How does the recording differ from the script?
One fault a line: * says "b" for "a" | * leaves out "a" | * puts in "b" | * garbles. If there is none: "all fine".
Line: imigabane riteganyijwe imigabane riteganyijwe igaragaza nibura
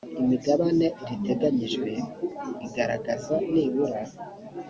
* leaves out "imigabane riteganyijwe"